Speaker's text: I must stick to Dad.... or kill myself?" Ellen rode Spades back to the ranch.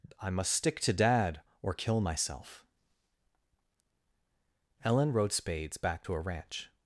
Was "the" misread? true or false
true